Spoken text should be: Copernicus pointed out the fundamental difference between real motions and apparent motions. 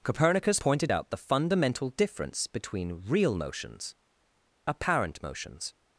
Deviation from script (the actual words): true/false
true